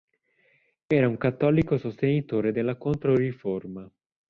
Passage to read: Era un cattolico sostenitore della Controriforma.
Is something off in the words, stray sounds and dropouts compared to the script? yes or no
no